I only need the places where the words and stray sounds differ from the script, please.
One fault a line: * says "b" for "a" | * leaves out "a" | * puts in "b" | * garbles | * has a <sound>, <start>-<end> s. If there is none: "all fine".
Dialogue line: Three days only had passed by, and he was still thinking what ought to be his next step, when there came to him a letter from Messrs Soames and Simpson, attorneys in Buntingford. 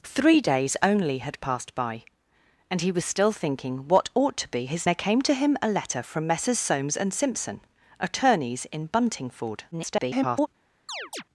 * leaves out "next step when"
* garbles
* has a chirp, 10.9-11.2 s